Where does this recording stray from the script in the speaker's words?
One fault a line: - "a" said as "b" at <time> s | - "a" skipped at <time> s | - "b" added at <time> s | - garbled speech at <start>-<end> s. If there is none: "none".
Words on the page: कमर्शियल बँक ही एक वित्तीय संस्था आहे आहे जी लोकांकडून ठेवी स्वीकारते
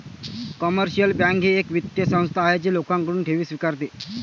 - "आहे" skipped at 2.6 s